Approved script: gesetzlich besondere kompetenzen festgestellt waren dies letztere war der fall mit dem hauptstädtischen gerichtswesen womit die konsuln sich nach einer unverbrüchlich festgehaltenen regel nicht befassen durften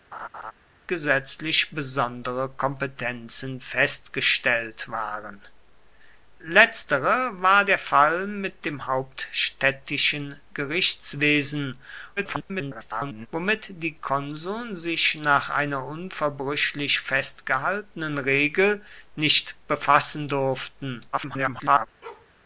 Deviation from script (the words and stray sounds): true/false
true